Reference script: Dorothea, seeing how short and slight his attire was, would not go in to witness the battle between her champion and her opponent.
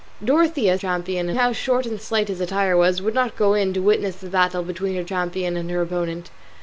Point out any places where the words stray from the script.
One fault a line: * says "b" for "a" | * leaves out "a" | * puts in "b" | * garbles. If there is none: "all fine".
* says "champion" for "seeing"